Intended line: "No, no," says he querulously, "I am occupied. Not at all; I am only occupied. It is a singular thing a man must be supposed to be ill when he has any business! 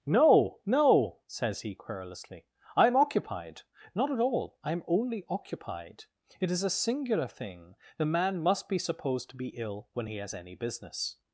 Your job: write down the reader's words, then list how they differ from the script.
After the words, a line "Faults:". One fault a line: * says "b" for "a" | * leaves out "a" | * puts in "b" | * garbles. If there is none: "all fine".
"No, no," says he querulously, "I am occupied. Not at all; I am only occupied. It is a singular thing the man must be supposed to be ill when he has any business!
Faults:
* says "the" for "a"